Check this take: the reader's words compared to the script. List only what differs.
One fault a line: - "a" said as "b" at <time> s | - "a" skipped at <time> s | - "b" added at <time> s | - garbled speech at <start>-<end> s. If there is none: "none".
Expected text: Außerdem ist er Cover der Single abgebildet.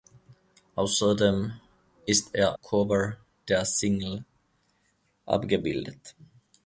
none